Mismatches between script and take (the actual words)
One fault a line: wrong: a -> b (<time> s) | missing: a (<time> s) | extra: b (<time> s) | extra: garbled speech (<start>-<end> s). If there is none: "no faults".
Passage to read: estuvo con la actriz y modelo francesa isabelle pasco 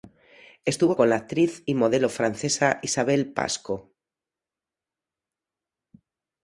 no faults